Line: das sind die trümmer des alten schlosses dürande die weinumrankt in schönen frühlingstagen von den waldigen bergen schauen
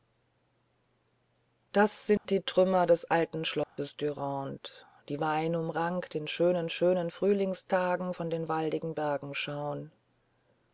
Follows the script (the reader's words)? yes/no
no